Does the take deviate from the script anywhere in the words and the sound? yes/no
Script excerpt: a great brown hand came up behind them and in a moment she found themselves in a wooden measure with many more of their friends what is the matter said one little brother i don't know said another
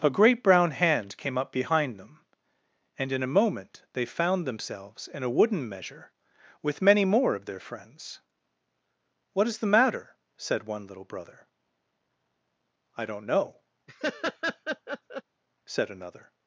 yes